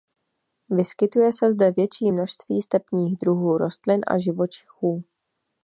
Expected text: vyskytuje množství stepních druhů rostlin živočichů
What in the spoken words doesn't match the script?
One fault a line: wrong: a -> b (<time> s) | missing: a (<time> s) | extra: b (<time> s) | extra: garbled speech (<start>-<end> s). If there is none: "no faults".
extra: se zde větší (1.3 s)
extra: a (4.1 s)